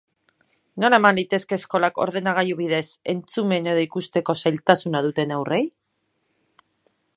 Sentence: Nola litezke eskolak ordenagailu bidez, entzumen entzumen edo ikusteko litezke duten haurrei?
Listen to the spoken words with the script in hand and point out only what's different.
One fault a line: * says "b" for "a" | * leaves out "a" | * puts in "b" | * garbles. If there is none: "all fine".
* puts in "eman"
* leaves out "entzumen"
* says "zailtasuna" for "litezke"